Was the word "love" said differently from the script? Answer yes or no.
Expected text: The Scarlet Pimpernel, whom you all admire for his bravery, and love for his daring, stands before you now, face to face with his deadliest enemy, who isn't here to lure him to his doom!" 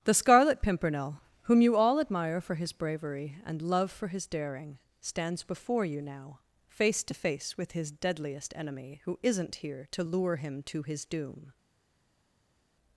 no